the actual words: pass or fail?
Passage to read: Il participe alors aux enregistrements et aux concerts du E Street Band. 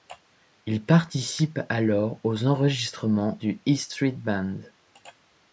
fail